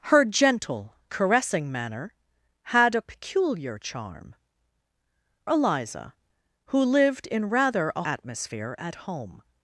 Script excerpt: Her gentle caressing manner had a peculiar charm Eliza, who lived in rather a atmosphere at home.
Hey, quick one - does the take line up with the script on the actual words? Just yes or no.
yes